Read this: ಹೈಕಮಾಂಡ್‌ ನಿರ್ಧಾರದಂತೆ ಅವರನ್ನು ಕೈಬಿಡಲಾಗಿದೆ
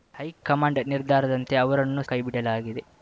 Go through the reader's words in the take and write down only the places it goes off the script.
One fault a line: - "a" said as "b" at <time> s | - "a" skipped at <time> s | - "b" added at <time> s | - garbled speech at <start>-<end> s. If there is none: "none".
none